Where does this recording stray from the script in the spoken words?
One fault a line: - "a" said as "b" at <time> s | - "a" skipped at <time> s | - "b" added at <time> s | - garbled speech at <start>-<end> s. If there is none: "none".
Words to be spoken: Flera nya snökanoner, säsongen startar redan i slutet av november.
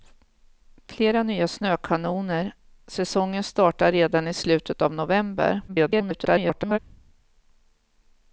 - garbled speech at 5.7-6.8 s